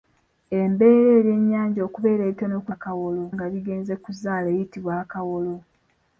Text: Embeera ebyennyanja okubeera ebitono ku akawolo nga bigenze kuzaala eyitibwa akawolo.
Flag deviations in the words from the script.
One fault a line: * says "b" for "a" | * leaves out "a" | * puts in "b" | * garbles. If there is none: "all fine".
all fine